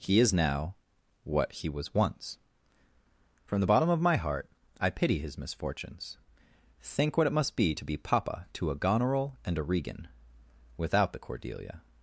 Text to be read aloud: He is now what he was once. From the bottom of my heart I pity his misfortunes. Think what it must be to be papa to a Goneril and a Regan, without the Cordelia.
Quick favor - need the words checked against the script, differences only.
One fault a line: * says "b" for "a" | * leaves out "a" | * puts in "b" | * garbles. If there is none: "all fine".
all fine